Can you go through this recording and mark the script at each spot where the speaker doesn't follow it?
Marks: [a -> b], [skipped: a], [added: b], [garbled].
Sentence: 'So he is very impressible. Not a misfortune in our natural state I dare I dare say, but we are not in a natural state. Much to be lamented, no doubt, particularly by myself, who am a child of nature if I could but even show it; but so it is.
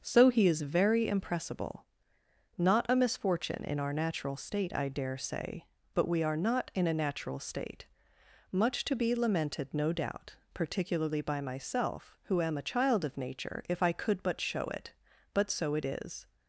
'So he is very impressible. Not a misfortune in our natural state I dare [skipped: I dare] say, but we are not in a natural state. Much to be lamented, no doubt, particularly by myself, who am a child of nature if I could but [skipped: even] show it; but so it is.